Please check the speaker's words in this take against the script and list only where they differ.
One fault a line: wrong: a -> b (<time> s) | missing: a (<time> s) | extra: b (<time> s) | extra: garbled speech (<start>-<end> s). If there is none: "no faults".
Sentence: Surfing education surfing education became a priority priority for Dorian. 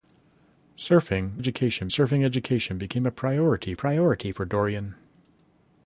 no faults